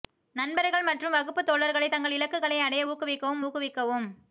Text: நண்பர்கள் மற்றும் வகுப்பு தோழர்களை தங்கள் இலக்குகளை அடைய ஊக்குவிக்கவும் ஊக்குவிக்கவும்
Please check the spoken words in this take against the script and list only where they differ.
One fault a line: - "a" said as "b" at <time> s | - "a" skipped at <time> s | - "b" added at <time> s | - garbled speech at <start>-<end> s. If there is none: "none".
none